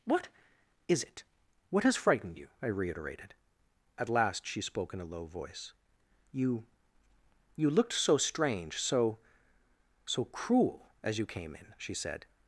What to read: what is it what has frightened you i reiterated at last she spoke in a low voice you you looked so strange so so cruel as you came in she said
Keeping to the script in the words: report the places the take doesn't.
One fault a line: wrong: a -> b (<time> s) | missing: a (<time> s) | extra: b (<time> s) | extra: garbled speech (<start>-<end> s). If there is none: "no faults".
no faults